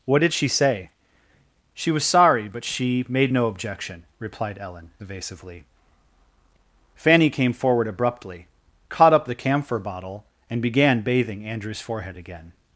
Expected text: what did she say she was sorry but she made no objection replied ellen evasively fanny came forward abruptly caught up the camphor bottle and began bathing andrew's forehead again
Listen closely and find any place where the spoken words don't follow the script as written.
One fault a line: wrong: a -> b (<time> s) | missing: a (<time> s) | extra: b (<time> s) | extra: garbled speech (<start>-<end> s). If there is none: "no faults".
no faults